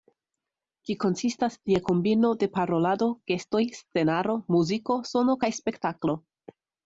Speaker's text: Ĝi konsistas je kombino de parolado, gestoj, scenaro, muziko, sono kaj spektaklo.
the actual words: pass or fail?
pass